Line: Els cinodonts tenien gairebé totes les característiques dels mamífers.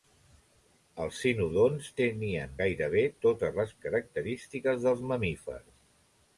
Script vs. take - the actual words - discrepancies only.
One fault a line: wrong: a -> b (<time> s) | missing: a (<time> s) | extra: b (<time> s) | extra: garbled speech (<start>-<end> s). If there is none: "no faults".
no faults